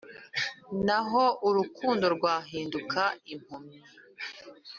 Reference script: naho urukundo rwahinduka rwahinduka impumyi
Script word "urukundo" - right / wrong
right